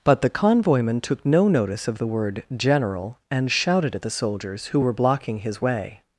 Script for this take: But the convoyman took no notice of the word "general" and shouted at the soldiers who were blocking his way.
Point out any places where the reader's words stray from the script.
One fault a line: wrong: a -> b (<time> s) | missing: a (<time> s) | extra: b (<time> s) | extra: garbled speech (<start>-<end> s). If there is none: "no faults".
no faults